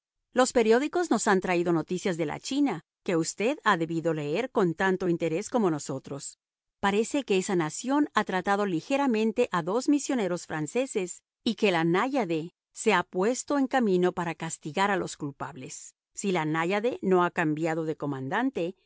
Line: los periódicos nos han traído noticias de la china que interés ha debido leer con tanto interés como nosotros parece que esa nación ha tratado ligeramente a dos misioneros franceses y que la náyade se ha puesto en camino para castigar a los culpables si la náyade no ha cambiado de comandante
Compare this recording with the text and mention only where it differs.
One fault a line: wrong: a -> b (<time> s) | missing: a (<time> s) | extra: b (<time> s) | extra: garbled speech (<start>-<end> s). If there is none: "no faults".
wrong: interés -> usted (3.2 s)